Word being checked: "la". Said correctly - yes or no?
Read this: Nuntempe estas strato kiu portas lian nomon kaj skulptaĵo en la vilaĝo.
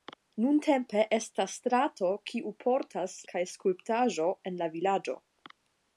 yes